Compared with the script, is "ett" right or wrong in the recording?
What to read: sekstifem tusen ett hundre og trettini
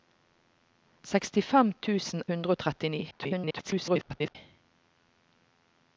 wrong